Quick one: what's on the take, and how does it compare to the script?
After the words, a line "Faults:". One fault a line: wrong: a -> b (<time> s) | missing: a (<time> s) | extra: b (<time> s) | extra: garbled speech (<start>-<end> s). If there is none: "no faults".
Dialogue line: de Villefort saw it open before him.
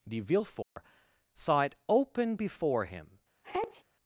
de Villefort saw it open before him.
Faults:
no faults